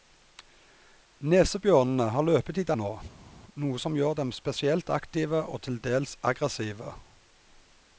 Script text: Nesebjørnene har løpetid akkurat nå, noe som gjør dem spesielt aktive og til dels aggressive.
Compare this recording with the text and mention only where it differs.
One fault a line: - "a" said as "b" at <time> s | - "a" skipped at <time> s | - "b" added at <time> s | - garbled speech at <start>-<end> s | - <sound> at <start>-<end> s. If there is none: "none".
- "akkurat" skipped at 2.7 s